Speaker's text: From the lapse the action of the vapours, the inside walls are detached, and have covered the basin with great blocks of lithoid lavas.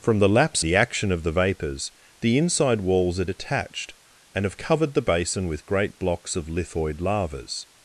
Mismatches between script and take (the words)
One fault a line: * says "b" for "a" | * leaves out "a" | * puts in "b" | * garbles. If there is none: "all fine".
all fine